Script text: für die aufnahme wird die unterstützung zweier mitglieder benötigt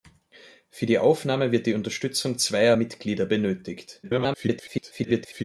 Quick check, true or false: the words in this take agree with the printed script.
false